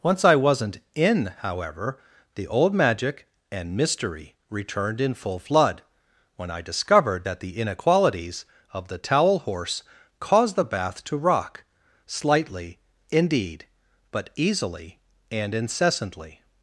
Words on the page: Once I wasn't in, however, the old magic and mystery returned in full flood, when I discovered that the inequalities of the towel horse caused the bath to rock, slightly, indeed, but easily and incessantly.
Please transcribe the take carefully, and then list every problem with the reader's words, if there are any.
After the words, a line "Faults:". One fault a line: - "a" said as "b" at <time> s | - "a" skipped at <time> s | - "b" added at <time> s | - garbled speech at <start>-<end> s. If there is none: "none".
Once I wasn't in, however, the old magic and mystery returned in full flood, when I discovered that the inequalities of the towel horse caused the bath to rock, slightly, indeed, but easily and incessantly.
Faults:
none